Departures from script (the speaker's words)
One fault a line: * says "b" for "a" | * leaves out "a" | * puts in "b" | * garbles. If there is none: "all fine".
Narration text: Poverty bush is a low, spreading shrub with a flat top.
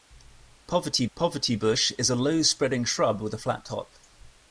* puts in "poverty"